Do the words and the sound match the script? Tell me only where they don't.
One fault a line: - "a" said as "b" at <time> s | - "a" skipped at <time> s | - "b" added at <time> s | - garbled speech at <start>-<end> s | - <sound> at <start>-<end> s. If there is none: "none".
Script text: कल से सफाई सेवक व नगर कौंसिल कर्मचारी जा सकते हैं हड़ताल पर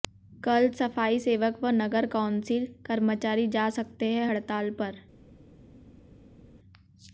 - "से" skipped at 0.7 s